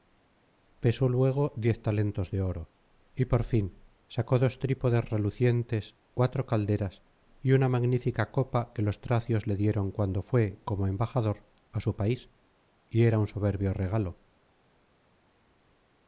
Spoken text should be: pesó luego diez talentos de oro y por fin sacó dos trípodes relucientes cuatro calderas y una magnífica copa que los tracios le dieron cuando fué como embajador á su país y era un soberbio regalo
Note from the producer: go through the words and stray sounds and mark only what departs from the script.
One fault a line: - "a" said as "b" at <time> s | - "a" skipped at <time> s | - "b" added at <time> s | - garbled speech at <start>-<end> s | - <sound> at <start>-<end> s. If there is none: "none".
none